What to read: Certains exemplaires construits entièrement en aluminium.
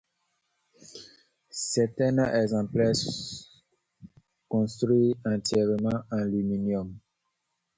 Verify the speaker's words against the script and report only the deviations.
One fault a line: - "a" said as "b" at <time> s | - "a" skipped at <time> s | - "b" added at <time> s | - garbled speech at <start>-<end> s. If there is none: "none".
none